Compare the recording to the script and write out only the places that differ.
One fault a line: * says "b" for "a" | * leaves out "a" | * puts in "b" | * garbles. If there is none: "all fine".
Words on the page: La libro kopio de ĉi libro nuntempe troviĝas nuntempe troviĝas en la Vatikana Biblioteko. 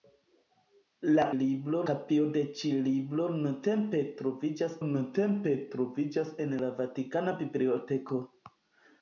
all fine